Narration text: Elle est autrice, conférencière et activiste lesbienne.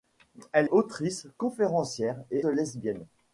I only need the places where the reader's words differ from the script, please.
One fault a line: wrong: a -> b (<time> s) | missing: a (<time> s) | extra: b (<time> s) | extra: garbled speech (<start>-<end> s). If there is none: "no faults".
missing: est (0.7 s)
missing: activiste (2.5 s)